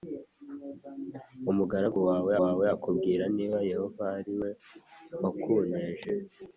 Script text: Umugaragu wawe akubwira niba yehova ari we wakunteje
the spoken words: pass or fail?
fail